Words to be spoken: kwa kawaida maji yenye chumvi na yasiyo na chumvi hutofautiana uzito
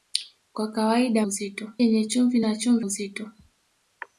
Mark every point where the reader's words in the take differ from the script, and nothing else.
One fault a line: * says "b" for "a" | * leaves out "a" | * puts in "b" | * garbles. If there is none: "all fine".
* says "uzito" for "maji"
* leaves out "yasiyo"
* leaves out "hutofautiana"